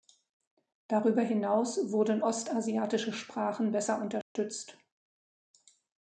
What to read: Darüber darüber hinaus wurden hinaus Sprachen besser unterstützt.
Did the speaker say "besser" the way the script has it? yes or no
yes